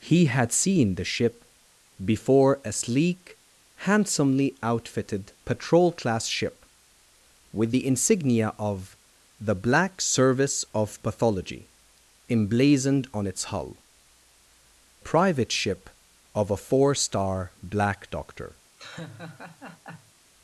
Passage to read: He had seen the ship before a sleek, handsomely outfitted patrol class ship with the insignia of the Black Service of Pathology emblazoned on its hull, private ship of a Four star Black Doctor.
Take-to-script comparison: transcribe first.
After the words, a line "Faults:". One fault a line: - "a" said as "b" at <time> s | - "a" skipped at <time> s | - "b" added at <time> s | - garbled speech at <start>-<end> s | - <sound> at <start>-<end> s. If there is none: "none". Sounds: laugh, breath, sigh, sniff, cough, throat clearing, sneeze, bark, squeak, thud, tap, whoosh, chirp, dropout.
He had seen the ship before a sleek, handsomely outfitted patrol class ship with the insignia of the Black Service of Pathology emblazoned on its hull, private ship of a Four star Black Doctor.
Faults:
- laugh at 18.8-20.1 s